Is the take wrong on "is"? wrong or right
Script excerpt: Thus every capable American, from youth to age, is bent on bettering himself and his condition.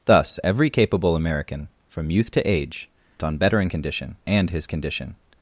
wrong